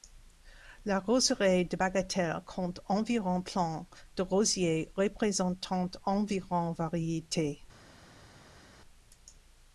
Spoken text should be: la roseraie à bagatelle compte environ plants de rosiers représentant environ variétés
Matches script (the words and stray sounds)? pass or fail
fail